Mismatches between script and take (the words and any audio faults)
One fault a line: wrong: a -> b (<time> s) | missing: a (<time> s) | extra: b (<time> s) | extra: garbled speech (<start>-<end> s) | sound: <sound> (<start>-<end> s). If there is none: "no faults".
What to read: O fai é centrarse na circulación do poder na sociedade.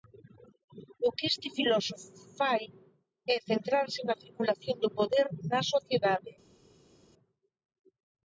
extra: que este filósofo (1.1 s)